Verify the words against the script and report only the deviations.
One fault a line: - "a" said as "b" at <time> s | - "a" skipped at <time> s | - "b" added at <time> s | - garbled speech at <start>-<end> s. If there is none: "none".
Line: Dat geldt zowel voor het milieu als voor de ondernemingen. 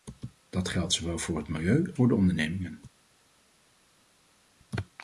- "als" skipped at 1.9 s